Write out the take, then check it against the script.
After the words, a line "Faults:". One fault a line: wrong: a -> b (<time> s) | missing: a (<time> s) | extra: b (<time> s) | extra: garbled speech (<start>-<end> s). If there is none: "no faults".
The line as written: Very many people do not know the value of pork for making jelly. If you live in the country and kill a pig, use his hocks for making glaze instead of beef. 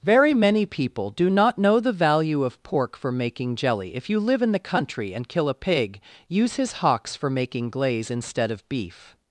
Very many people do not know the value of pork for making jelly. If you live in the country and kill a pig, use his hocks for making glaze instead of beef.
Faults:
no faults